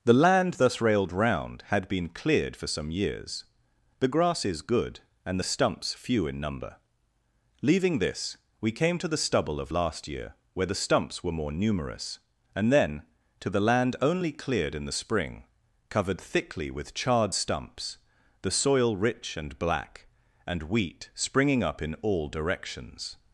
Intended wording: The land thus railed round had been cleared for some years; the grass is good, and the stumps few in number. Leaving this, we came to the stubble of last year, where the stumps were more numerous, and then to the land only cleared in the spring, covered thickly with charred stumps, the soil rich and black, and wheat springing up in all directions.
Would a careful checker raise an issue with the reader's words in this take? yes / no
no